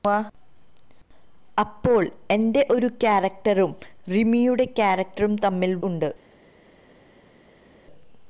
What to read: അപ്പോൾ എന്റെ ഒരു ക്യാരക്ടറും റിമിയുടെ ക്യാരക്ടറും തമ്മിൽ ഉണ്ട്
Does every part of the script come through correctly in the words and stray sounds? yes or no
yes